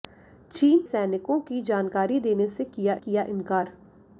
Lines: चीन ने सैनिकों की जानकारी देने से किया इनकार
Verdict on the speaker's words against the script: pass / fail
fail